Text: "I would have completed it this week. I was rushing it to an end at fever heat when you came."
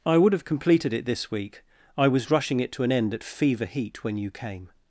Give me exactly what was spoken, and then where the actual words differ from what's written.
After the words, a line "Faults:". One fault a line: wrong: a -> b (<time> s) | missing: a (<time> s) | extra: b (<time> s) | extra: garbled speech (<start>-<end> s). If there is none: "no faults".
"I would have completed it this week. I was rushing it to an end at fever heat when you came."
Faults:
no faults